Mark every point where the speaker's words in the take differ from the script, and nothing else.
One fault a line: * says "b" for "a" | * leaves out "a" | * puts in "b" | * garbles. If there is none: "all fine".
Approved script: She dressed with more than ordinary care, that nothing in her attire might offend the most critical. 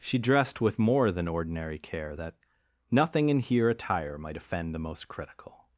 * says "here" for "her"